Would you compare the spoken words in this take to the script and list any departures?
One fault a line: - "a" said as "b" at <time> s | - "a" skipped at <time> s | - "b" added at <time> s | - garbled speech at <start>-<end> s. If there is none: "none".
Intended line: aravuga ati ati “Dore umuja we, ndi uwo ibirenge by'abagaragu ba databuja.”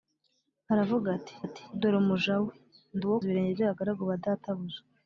none